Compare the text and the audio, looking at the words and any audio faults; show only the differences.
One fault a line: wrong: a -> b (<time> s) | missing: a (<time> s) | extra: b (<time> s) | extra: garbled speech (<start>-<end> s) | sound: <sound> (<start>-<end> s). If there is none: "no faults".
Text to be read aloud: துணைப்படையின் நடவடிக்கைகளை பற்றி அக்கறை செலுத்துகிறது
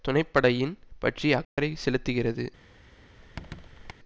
missing: நடவடிக்கைகளை (0.7 s)
sound: dropout (1.4-1.6 s)
sound: squeak (3.2-3.9 s)